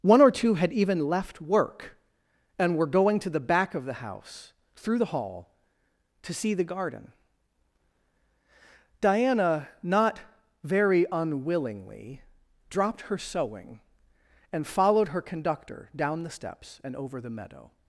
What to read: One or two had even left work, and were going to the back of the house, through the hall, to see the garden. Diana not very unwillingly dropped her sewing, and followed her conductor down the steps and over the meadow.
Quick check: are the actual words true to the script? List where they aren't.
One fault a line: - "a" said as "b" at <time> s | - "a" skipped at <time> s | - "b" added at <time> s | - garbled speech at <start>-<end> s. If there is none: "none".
none